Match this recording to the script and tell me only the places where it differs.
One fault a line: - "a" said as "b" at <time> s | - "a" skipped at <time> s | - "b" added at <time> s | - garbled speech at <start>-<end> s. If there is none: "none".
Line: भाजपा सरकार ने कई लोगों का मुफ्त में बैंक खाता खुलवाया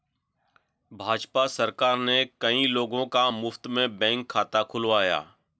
none